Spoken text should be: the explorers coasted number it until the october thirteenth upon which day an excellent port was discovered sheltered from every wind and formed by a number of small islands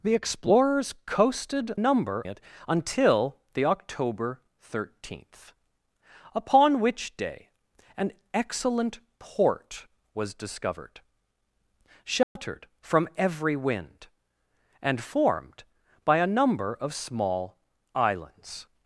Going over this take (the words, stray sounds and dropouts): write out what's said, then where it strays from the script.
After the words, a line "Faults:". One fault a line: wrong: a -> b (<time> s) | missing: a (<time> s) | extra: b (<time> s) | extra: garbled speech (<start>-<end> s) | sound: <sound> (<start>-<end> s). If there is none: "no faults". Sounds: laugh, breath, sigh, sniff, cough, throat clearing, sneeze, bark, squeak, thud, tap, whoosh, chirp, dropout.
the explorers coasted number it until the october thirteenth upon which day an excellent port was discovered sheltered from every wind and formed by a number of small islands
Faults:
sound: dropout (12.2-12.4 s)